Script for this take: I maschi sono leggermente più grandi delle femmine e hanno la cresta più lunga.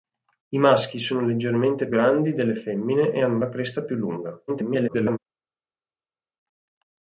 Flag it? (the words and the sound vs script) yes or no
yes